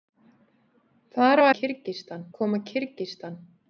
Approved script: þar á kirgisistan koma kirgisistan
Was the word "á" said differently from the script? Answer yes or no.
no